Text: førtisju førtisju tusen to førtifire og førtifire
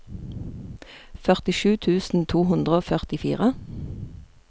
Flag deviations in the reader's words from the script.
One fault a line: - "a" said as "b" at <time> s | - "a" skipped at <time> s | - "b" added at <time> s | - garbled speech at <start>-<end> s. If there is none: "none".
- "førtisju" skipped at 1.8 s
- "førtifire" said as "hundre" at 2.5 s